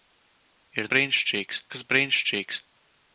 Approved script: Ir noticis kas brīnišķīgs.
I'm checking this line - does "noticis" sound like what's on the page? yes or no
no